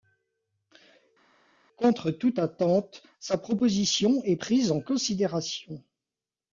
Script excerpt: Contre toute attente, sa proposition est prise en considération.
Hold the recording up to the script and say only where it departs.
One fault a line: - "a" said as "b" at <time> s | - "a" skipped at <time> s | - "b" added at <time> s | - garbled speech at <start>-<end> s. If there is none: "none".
none